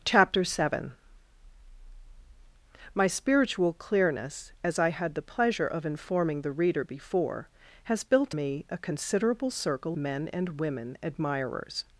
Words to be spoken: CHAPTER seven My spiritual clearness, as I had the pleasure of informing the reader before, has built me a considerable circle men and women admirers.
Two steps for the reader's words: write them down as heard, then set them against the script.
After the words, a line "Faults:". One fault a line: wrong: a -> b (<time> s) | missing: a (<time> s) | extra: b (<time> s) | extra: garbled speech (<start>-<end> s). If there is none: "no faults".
CHAPTER seven My spiritual clearness, as I had the pleasure of informing the reader before, has built me a considerable circle men and women admirers.
Faults:
no faults